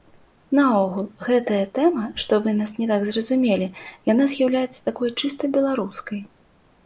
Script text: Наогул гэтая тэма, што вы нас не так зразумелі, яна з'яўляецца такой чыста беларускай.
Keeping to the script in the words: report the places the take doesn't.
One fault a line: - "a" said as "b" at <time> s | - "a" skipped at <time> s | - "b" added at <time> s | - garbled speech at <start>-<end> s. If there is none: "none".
none